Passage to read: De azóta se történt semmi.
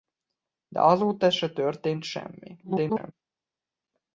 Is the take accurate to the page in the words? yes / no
no